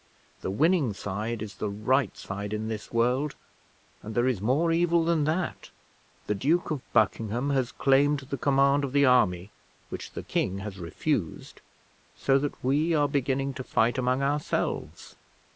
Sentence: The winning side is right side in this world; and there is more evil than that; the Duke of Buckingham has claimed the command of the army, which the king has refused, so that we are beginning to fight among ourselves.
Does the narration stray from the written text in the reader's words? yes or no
yes